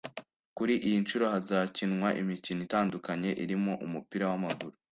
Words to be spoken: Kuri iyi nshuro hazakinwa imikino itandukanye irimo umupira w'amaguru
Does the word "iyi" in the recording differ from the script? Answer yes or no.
no